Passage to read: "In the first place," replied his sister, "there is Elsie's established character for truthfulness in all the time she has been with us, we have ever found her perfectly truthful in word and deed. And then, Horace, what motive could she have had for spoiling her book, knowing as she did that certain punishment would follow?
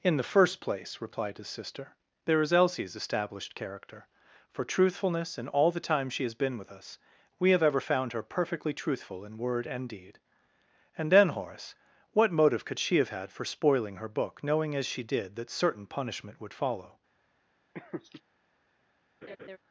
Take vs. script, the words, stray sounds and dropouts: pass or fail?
fail